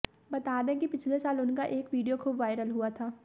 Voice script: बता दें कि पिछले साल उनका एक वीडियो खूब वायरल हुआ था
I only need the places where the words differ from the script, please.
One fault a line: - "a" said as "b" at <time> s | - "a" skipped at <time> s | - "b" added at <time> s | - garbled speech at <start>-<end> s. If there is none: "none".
none